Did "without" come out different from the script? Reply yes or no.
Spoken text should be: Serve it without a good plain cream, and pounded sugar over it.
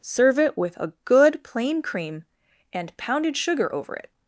yes